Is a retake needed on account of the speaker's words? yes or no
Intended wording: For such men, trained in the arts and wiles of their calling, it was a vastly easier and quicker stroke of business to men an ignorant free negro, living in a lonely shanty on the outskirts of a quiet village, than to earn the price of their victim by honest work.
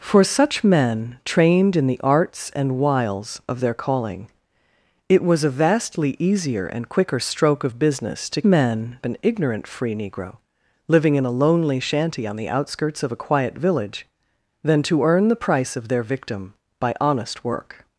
no